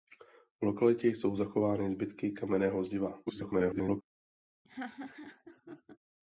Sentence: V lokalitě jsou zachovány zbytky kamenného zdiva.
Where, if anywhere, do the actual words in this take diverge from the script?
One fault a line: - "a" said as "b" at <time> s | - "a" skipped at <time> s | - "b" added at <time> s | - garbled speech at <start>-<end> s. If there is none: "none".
- garbled speech at 3.3-4.0 s